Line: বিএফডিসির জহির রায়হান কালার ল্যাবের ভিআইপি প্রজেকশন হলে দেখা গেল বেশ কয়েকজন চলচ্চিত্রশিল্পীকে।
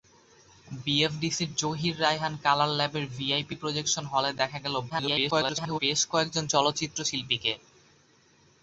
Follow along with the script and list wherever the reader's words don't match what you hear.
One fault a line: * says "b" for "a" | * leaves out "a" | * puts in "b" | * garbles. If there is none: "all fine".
* garbles